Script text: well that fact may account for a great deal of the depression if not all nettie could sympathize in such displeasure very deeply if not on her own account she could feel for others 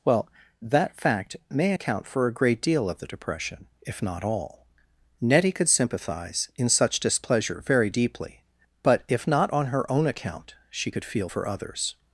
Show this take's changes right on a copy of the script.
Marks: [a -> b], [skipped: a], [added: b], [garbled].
well that fact may account for a great deal of the depression if not all nettie could sympathize in such displeasure very deeply [added: but] if not on her own account she could feel for others